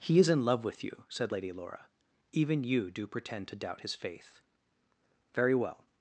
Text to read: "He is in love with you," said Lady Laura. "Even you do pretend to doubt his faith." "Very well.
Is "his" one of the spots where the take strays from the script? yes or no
no